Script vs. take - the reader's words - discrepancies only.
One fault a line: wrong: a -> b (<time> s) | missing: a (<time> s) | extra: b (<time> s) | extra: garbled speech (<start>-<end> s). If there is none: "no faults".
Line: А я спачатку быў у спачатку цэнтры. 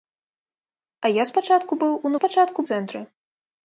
no faults